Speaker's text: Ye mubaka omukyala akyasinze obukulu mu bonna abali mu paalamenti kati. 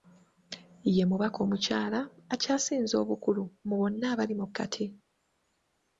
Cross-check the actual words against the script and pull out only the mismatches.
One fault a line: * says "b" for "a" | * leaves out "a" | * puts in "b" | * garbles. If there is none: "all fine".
* leaves out "paalamenti"